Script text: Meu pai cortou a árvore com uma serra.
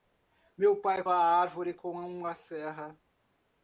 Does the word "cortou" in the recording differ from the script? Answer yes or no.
yes